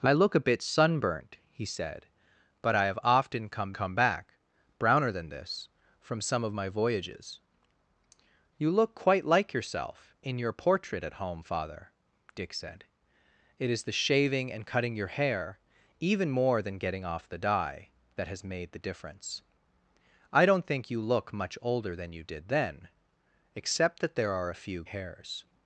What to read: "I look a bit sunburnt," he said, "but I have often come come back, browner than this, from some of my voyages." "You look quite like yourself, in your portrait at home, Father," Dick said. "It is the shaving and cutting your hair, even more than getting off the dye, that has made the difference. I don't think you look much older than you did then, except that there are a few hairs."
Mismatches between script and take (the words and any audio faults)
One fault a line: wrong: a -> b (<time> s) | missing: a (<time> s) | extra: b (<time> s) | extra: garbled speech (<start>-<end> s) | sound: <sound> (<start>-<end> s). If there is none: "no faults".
no faults